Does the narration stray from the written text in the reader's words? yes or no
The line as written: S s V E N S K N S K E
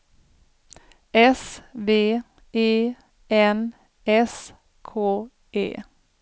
yes